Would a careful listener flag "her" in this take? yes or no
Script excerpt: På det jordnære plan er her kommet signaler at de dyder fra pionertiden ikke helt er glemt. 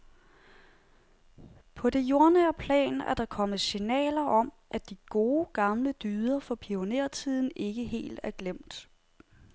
yes